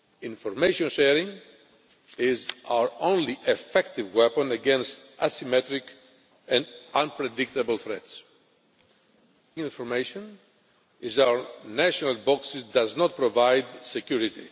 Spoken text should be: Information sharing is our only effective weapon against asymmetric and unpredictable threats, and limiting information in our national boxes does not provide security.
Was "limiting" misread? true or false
true